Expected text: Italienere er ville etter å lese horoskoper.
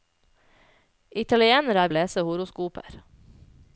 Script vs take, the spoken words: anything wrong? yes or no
yes